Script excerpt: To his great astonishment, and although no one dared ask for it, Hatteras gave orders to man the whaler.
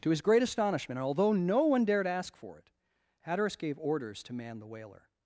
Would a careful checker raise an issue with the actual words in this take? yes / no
yes